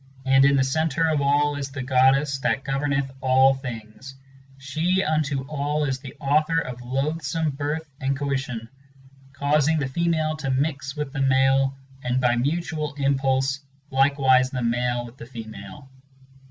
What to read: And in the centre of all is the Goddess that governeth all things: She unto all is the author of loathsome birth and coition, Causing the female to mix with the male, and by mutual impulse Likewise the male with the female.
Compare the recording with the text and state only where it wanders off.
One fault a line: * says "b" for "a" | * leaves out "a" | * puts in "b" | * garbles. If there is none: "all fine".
all fine